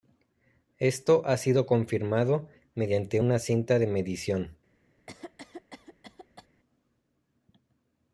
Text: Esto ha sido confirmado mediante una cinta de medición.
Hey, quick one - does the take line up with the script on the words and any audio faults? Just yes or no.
no